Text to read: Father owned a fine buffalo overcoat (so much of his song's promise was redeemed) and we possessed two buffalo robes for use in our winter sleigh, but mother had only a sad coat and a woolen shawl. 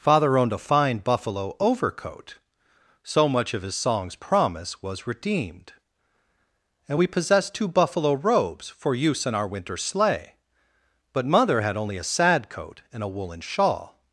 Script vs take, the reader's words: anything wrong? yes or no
no